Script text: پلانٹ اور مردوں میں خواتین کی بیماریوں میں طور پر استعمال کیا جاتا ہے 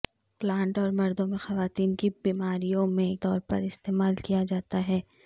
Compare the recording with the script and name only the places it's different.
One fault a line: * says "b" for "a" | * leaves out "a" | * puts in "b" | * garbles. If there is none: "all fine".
all fine